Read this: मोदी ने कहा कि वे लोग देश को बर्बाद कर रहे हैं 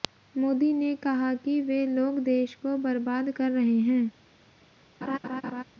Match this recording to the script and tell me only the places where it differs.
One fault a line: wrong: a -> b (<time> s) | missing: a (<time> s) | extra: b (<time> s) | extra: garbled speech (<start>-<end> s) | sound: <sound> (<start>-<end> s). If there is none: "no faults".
sound: laugh (5.0-5.6 s)